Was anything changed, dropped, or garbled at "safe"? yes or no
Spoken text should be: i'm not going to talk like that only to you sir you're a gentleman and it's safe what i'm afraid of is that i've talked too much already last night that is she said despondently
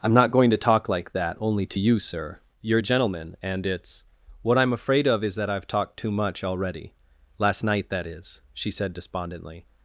yes